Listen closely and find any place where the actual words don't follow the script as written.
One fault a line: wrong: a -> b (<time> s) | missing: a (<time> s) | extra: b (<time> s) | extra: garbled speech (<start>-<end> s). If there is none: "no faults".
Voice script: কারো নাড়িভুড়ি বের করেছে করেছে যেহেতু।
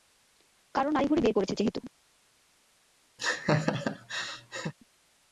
missing: করেছে (1.5 s)